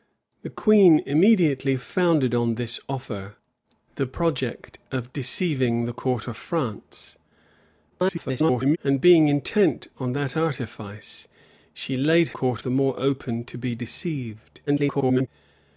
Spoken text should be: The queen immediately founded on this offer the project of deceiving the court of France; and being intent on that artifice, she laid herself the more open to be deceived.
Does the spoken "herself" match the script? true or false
false